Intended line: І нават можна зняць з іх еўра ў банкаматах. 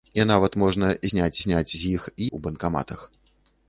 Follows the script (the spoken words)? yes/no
no